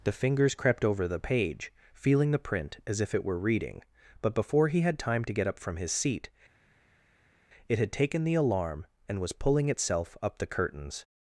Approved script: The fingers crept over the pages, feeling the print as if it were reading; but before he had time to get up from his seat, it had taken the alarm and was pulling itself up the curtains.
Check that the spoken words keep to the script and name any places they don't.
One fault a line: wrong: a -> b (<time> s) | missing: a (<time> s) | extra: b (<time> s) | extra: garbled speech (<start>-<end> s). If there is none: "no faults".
wrong: pages -> page (1.2 s)